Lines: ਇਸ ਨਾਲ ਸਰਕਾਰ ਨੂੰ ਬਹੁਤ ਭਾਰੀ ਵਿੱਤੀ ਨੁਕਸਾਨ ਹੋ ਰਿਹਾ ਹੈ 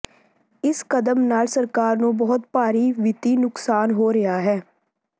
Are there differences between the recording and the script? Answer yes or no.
yes